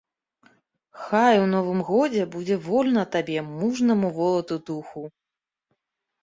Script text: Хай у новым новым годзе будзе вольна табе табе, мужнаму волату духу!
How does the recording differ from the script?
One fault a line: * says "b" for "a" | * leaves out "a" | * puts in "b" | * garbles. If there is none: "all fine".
* leaves out "новым"
* leaves out "табе"